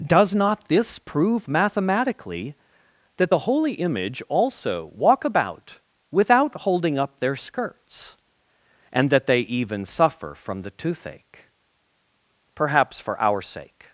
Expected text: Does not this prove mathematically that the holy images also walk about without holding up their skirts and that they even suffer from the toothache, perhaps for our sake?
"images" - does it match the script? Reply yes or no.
no